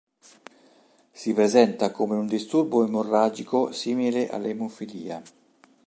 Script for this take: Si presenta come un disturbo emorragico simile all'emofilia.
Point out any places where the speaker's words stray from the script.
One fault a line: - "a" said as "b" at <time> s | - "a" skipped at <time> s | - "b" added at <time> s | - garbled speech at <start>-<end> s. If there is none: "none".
none